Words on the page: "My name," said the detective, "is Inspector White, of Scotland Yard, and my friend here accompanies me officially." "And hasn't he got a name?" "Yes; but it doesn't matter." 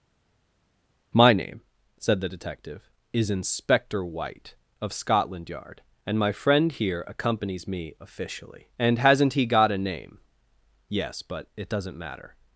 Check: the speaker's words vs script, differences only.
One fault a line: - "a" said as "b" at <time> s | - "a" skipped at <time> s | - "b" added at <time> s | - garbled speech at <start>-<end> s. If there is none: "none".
none